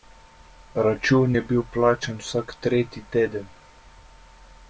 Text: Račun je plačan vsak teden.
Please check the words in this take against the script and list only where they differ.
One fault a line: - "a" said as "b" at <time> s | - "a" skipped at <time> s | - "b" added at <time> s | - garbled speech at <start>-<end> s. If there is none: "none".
- "bil" added at 1.5 s
- "tretji" added at 2.7 s